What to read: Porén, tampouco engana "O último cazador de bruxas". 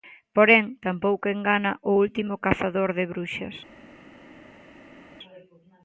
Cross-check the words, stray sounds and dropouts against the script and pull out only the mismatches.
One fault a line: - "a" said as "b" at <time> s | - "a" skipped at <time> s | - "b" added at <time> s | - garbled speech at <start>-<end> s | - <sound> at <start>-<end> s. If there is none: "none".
none